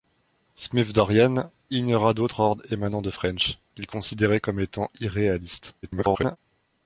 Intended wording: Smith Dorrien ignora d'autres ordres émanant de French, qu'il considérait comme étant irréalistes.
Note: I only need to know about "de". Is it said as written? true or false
true